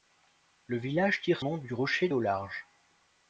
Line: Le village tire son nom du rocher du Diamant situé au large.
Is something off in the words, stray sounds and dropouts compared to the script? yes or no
yes